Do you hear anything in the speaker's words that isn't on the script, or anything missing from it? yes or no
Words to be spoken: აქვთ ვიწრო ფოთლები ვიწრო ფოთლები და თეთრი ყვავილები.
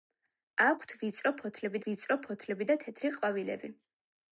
no